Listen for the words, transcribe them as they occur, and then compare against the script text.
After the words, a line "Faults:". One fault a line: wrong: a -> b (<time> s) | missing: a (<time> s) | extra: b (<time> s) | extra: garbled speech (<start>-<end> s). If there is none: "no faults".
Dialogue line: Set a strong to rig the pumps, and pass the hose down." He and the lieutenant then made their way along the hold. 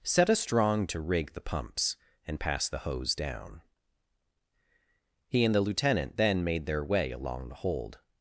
Set a strong to rig the pumps, and pass the hose down." He and the lieutenant then made their way along the hold.
Faults:
no faults